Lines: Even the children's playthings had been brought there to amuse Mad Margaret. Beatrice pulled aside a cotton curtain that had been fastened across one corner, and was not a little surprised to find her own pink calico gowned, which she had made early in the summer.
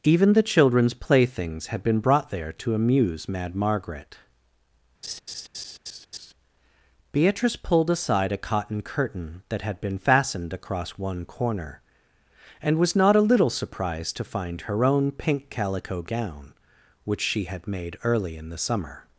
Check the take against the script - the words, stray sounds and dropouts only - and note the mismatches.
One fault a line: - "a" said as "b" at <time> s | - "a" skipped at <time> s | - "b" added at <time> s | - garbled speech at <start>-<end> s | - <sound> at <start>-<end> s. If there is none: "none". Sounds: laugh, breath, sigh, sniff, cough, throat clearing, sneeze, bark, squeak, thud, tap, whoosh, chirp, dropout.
- laugh at 5.0-6.3 s
- "gowned" said as "gown" at 16.0 s